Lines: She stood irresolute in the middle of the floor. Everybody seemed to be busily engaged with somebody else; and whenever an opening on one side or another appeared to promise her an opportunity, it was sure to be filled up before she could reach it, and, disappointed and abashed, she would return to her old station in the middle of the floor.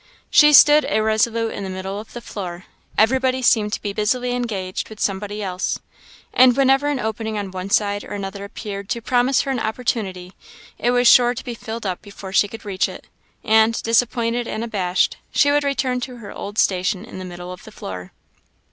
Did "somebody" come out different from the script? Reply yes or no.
no